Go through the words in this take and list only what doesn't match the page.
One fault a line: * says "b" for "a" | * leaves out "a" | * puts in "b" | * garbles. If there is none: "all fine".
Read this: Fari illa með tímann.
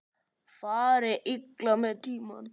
all fine